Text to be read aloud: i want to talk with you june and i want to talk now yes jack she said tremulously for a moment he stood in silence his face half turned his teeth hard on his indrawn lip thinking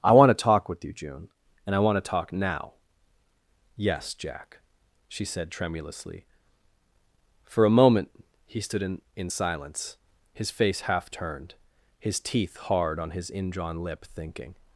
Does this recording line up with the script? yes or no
no